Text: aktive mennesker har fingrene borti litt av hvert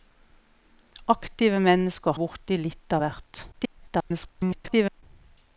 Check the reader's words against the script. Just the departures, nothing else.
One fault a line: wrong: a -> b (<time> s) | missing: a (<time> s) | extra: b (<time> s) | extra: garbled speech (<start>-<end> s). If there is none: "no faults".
missing: har fingrene (2.2 s)
extra: garbled speech (3.5-5.0 s)